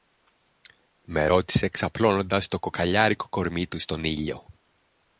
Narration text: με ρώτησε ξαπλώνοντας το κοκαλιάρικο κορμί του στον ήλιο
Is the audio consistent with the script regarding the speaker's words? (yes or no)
yes